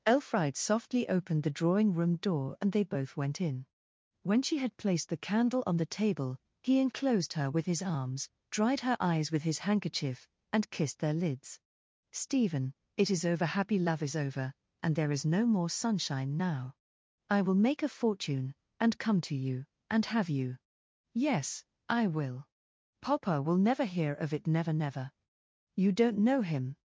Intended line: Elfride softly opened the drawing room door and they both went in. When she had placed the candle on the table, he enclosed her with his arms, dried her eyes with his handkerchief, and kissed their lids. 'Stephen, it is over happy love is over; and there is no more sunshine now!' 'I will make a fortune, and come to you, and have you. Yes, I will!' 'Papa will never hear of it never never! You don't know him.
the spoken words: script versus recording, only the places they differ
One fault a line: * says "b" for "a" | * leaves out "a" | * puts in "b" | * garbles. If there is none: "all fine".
all fine